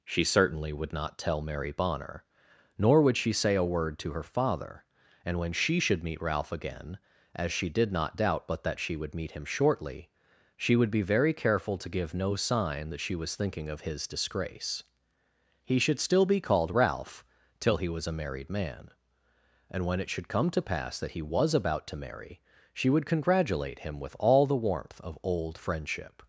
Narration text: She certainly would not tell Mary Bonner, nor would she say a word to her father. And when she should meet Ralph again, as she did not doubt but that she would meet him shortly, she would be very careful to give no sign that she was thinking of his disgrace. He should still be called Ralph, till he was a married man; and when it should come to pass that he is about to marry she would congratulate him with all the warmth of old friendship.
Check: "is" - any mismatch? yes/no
yes